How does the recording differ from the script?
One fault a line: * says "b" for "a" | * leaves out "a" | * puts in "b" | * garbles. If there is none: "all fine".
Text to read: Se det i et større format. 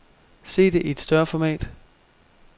all fine